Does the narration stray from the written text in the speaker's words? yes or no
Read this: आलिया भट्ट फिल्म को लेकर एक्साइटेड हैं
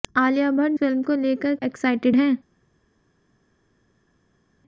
no